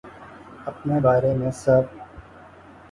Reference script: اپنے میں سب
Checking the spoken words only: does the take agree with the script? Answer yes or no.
no